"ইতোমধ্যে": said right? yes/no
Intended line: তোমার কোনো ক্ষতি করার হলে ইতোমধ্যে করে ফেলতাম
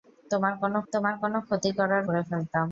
no